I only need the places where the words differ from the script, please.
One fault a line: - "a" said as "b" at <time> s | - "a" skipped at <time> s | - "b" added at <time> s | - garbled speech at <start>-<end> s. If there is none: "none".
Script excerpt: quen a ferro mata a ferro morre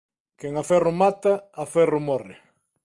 none